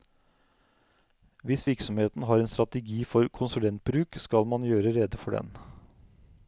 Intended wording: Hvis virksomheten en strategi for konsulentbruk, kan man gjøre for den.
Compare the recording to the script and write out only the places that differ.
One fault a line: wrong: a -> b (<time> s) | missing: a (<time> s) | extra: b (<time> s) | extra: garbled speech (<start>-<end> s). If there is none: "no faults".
extra: har (2.2 s)
wrong: kan -> skal (4.2 s)
extra: rede (5.0 s)